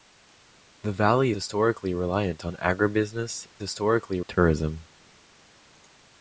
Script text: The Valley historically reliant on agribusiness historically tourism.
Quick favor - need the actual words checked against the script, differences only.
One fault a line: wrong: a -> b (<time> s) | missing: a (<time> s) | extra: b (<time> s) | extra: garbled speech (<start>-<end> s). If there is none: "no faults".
no faults